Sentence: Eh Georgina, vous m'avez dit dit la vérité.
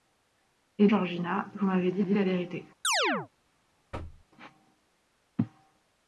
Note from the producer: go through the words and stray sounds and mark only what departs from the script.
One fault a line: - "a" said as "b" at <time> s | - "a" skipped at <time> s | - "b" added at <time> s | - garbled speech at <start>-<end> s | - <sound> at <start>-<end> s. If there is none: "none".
- chirp at 2.8-3.3 s
- thud at 3.9-4.3 s